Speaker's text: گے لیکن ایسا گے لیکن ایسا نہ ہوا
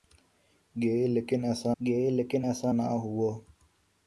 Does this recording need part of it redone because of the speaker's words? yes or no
no